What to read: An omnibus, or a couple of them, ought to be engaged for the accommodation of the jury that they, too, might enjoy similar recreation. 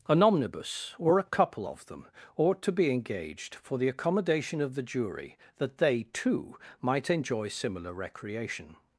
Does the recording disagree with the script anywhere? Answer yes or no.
no